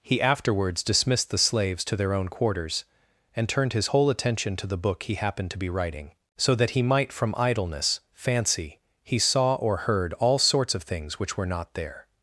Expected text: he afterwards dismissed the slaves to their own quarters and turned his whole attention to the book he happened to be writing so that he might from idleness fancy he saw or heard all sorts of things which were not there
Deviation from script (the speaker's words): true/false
false